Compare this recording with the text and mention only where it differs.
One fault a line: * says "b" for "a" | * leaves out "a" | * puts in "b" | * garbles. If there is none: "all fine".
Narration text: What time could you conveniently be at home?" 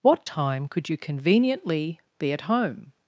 all fine